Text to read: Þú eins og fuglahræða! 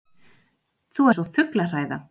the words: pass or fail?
pass